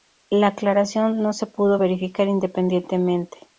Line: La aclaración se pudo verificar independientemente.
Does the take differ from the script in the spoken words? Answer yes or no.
yes